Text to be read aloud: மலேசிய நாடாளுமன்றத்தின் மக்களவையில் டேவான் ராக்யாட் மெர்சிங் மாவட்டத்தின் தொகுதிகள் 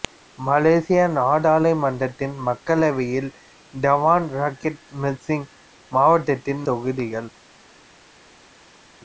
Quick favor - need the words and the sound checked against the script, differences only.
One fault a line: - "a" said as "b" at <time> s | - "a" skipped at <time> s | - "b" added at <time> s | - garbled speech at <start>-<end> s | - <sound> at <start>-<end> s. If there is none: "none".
none